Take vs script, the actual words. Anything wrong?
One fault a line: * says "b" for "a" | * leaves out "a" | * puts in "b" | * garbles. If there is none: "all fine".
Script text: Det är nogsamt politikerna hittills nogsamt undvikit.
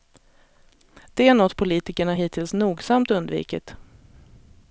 * says "något" for "nogsamt"